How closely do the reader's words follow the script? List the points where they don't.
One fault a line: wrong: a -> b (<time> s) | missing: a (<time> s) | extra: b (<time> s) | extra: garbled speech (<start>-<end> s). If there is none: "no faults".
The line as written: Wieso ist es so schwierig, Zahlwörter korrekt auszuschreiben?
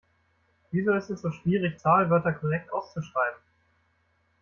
no faults